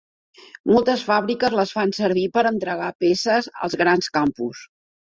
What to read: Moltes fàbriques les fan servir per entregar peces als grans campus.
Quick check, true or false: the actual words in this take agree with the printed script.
true